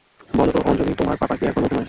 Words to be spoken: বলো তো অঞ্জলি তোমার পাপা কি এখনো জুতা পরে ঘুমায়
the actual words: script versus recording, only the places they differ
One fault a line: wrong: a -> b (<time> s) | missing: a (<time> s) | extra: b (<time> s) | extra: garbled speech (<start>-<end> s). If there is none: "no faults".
missing: জুতা পরে (1.7 s)